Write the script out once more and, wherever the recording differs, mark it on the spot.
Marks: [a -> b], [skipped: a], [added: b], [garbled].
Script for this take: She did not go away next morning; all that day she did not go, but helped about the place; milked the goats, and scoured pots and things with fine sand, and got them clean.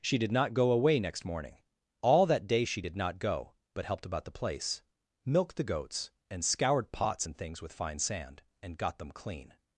She did not go away next morning; all that day she did not go, but helped about the place; milked the goats, and scoured pots and things with fine sand, and got them clean.